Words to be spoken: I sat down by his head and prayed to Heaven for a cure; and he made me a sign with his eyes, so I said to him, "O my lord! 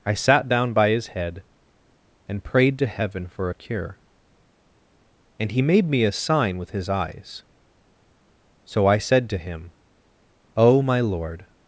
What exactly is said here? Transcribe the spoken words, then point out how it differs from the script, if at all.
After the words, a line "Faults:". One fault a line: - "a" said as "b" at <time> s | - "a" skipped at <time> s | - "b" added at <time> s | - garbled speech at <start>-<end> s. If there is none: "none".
I sat down by his head and prayed to Heaven for a cure; and he made me a sign with his eyes, so I said to him, "O my lord!
Faults:
none